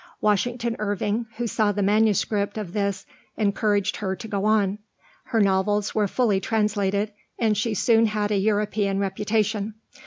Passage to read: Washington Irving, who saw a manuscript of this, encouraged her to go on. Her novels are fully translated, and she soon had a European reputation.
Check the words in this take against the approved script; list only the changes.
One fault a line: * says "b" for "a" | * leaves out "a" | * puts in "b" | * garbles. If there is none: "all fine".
* says "the" for "a"
* says "were" for "are"